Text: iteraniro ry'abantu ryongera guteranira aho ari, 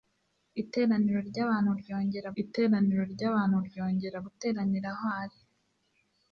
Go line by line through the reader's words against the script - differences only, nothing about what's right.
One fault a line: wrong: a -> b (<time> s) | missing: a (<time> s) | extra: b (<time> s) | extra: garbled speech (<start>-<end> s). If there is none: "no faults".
extra: iteraniro ry'abantu ryongera (2.4 s)